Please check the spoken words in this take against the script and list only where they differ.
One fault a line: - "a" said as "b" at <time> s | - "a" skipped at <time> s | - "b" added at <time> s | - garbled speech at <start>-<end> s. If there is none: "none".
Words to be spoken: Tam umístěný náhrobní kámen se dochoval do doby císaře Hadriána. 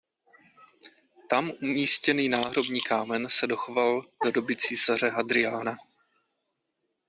none